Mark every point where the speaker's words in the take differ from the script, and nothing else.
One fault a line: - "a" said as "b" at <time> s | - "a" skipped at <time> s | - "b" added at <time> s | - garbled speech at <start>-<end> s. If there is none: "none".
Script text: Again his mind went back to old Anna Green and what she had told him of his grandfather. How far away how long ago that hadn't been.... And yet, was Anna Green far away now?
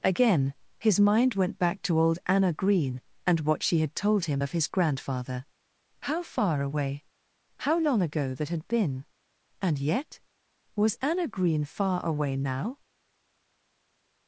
- "hadn't" said as "had" at 8.5 s